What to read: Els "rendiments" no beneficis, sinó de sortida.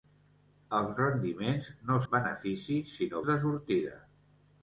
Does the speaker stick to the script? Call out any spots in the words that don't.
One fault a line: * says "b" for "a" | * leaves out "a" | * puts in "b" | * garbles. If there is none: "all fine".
all fine